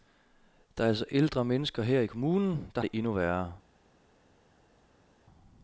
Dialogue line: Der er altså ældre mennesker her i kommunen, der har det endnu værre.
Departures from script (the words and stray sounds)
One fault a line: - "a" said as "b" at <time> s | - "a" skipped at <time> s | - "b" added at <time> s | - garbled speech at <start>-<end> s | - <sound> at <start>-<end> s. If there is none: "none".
- "har" skipped at 2.8 s